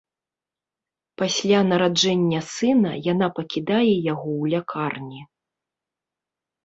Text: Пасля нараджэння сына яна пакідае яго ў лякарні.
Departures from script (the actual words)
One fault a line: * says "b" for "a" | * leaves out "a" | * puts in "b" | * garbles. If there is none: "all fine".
all fine